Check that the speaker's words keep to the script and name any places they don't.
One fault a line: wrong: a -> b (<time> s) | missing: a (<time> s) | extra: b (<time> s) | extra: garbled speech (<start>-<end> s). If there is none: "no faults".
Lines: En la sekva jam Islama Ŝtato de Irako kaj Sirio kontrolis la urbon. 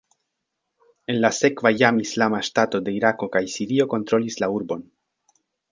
no faults